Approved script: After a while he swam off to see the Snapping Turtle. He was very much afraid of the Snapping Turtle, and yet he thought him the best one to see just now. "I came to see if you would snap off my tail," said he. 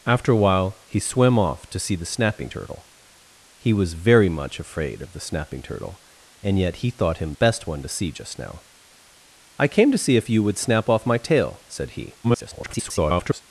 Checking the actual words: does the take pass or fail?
fail